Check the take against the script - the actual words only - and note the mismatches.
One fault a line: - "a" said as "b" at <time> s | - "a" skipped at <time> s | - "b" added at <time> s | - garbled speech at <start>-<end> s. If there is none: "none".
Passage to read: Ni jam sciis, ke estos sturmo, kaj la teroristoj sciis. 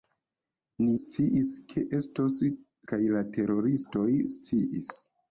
- "jam" skipped at 0.9 s
- "sturmo" skipped at 2.4 s